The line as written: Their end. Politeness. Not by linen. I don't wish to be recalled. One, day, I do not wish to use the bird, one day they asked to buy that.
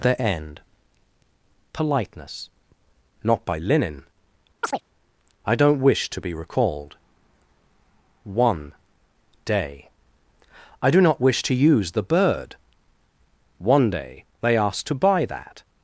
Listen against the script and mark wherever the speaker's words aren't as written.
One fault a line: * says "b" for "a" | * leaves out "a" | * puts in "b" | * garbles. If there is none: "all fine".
all fine